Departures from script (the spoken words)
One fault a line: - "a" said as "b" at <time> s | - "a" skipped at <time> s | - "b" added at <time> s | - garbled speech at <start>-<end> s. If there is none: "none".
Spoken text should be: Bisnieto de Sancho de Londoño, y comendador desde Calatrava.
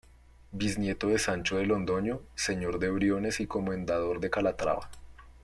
- "señor de Briones" added at 2.3 s
- "desde" said as "de" at 4.2 s